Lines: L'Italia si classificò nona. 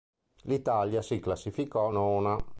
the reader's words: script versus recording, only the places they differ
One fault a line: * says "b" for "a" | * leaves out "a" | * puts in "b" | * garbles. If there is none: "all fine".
all fine